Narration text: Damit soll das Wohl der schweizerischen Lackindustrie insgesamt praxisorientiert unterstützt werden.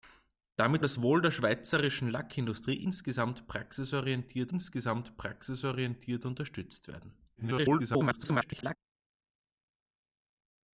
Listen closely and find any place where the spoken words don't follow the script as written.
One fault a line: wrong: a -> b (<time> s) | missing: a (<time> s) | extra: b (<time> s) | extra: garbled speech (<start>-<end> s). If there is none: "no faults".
missing: soll (0.8 s)
extra: insgesamt praxisorientiert (4.5 s)
extra: garbled speech (7.4-8.8 s)